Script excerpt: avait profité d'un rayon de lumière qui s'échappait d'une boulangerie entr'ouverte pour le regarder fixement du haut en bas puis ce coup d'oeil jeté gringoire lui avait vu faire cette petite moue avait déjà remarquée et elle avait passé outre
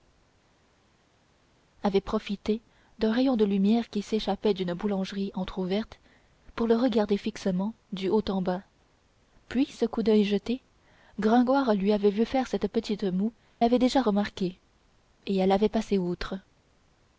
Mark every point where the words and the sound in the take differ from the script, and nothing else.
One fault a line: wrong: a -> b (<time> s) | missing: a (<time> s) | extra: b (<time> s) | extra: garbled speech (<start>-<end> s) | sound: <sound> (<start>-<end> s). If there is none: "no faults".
no faults